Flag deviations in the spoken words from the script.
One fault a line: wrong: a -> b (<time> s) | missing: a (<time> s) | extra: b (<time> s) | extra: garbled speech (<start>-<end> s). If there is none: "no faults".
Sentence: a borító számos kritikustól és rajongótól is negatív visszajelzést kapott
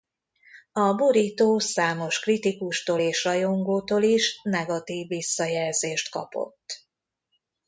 no faults